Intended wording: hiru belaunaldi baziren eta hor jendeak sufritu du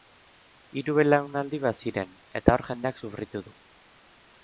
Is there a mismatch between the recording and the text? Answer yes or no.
no